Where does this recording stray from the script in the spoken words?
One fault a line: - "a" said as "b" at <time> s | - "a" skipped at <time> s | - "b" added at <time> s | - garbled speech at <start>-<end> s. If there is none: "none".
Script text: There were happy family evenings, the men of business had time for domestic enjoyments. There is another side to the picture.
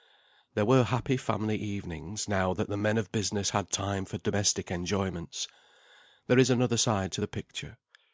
- "now that" added at 2.3 s